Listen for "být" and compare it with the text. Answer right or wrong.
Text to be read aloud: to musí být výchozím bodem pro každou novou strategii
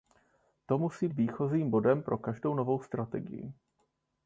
wrong